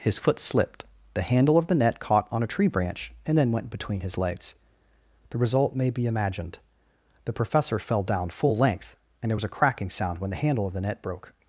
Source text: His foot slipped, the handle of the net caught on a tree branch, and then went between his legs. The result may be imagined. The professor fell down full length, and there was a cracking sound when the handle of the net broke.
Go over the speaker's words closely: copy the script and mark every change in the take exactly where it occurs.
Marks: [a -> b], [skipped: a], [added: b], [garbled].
His foot slipped, the handle of the net caught on a tree branch, and then went between his legs. The result may be imagined. The professor fell down full length, and there was a cracking sound when the handle of the net broke.